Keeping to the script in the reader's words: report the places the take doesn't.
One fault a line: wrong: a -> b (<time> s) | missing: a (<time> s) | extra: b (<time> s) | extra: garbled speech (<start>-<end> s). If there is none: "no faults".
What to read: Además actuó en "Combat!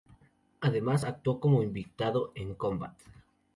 extra: como invitado (1.4 s)